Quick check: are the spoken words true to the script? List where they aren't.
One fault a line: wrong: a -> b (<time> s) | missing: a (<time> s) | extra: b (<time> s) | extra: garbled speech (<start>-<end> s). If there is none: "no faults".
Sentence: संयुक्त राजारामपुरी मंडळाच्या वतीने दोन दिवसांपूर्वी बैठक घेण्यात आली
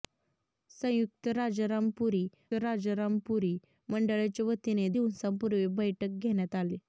extra: राजारामपुरी (2.6 s)
missing: दोन (4.9 s)